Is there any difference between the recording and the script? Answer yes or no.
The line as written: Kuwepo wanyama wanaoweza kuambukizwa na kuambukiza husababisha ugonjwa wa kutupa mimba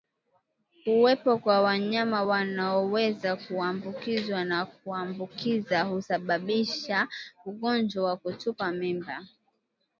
yes